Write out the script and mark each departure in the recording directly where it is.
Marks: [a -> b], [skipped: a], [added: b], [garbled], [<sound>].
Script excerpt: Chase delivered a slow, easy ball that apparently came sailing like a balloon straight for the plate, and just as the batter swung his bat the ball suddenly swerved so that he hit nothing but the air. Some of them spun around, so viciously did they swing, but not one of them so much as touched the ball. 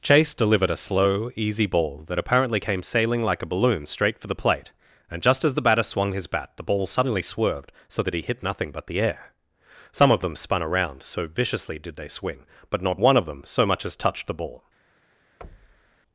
Chase delivered a slow, easy ball that apparently came sailing like a balloon straight for the plate, and just as the batter swung his bat the ball suddenly swerved so that he hit nothing but the air. Some of them spun around, so viciously did they swing, but not one of them so much as touched the ball. [thud]